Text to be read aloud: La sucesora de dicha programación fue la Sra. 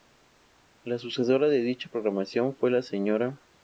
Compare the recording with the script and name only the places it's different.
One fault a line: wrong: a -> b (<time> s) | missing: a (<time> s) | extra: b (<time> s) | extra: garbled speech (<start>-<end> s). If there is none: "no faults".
no faults